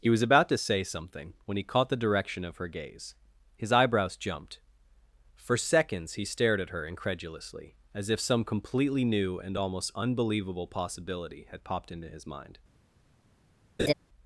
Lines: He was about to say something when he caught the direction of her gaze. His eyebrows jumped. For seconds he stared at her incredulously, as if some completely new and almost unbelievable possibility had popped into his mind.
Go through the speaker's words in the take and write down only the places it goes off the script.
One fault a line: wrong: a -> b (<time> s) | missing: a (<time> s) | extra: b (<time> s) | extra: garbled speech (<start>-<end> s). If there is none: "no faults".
no faults